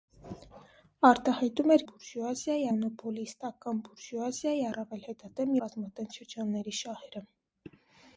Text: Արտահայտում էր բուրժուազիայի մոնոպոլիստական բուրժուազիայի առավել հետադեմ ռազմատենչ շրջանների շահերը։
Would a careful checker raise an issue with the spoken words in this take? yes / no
no